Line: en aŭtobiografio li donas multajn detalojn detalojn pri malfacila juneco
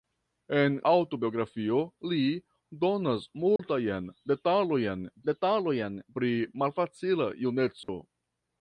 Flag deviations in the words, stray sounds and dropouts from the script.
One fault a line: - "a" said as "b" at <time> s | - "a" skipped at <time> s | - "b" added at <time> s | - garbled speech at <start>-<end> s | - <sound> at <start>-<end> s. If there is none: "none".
- dropout at 3.6-3.6 s
- dropout at 7.8-7.9 s